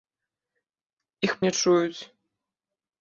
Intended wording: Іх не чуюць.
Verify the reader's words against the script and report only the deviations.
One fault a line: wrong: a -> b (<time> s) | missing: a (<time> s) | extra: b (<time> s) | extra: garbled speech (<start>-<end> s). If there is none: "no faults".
no faults